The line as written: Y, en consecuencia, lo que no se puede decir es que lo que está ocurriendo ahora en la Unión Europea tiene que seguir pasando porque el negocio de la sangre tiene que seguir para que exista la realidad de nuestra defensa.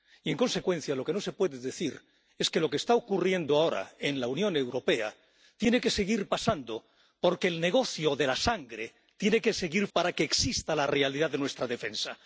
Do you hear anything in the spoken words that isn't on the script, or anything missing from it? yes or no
no